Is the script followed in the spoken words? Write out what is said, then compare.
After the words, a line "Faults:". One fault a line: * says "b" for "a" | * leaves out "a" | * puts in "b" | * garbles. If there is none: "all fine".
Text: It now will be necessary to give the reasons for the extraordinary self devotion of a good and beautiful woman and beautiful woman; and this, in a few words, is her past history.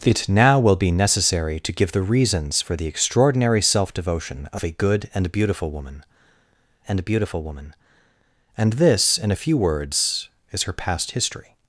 It now will be necessary to give the reasons for the extraordinary self devotion of a good and beautiful woman and beautiful woman; and this, in a few words, is her past history.
Faults:
all fine